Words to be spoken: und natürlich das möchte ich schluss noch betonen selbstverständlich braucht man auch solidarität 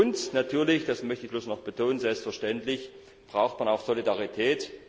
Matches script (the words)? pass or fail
pass